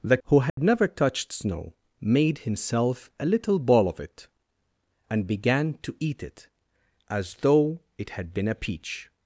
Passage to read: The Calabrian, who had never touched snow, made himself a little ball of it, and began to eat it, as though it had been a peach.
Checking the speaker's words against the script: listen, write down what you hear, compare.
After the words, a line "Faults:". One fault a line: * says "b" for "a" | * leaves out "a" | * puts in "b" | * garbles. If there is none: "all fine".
The Who had never touched snow, made himself a little ball of it, and began to eat it, as though it had been a peach.
Faults:
* leaves out "Calabrian"